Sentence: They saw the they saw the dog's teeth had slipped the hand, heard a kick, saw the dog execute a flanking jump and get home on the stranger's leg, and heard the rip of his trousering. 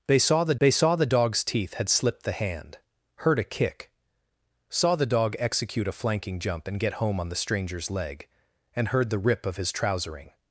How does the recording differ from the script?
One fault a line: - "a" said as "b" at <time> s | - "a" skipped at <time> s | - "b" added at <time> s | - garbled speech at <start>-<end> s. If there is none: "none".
none